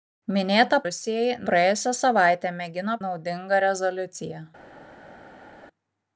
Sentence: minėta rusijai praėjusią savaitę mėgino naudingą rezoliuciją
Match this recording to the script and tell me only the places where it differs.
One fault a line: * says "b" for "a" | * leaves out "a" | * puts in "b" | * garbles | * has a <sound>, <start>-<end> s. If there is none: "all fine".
all fine